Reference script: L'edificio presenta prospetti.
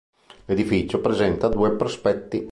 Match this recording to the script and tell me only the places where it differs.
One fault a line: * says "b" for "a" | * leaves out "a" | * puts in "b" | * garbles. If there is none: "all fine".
* puts in "due"